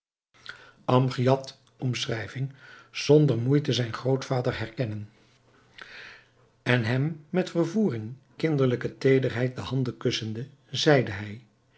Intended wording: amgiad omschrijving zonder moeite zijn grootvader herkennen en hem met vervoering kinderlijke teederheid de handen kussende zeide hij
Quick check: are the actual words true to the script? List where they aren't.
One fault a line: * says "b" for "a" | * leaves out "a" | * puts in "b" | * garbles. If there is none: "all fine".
all fine